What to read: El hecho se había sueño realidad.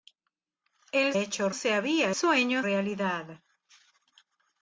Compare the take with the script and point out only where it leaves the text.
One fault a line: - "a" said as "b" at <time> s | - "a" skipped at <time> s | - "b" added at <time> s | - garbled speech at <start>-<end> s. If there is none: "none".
none